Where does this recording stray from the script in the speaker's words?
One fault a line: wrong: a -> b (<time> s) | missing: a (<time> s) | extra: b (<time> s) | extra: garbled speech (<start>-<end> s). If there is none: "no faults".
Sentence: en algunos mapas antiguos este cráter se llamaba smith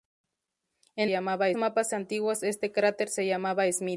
wrong: algunos -> llamaba (1.1 s)